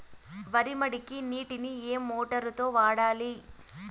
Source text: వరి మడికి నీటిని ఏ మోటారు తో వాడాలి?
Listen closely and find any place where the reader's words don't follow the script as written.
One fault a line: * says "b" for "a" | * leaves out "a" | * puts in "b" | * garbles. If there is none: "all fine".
all fine